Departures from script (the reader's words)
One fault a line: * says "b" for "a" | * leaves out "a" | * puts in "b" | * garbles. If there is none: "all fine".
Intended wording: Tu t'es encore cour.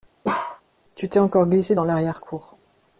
* puts in "glissé dans l'arrière"